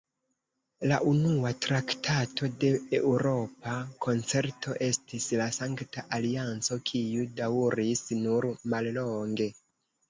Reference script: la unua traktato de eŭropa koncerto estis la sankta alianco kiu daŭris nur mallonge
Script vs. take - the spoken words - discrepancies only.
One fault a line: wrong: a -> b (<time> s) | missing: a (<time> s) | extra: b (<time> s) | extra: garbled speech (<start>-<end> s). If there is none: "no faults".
no faults